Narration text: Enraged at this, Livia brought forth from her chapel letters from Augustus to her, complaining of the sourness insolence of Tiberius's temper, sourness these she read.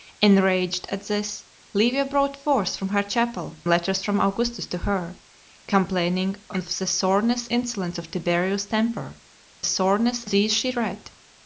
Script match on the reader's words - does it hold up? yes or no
yes